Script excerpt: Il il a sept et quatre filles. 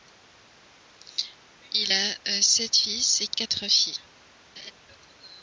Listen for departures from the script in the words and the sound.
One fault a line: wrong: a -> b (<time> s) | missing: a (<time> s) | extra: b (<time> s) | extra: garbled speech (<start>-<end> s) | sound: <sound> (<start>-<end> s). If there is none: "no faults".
missing: il (1.9 s)
extra: fils (2.7 s)
sound: laugh (4.6-4.7 s)